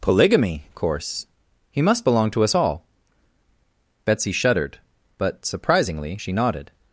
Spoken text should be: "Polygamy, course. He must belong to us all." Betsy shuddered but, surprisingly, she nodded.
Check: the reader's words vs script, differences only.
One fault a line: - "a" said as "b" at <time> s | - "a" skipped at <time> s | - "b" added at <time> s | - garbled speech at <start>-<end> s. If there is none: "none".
none